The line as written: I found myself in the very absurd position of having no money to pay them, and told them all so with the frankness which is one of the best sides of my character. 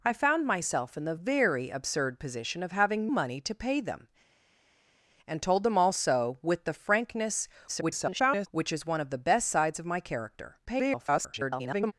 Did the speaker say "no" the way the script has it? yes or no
no